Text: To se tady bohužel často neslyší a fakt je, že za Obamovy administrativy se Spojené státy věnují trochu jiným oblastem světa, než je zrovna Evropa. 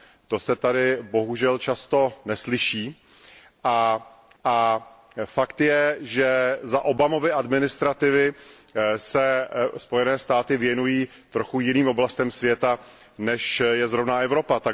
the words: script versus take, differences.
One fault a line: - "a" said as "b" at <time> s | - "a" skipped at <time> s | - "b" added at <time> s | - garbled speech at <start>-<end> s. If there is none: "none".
- "a" added at 4.4 s